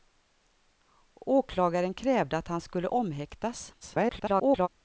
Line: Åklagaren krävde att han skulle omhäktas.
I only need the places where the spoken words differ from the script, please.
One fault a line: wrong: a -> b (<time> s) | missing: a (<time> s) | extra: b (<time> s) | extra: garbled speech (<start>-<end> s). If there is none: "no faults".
extra: garbled speech (3.8-4.7 s)